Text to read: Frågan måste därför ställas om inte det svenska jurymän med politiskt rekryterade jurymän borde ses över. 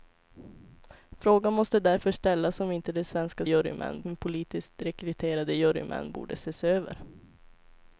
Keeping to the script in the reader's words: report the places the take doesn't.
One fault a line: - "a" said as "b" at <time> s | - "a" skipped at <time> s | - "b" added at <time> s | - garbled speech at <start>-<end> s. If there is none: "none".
none